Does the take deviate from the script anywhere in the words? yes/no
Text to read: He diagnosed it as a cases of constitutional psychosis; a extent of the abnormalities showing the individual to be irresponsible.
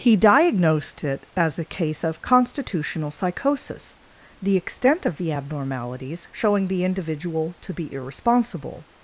yes